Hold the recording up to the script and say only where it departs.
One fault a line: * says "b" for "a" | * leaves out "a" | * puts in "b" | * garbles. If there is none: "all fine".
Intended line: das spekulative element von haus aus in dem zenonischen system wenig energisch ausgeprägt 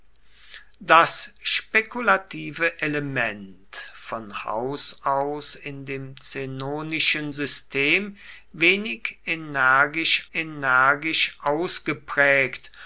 * puts in "energisch"